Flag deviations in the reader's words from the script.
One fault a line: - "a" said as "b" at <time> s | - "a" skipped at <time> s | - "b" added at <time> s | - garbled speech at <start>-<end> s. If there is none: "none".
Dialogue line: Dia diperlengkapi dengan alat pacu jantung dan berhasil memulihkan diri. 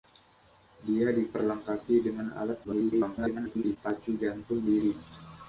- garbled speech at 2.6-3.8 s
- "dan berhasil memulihkan" skipped at 4.6 s